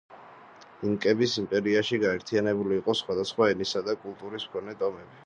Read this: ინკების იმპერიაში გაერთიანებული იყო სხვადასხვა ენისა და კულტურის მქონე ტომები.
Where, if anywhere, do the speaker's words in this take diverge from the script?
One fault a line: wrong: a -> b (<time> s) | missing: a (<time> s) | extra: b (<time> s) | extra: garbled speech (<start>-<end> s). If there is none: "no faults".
no faults